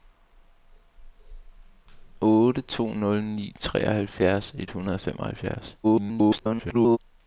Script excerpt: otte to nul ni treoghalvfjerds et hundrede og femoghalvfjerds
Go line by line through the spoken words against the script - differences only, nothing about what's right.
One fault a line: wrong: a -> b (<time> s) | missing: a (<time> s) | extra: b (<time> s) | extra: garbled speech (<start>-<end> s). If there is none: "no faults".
extra: garbled speech (5.8-7.0 s)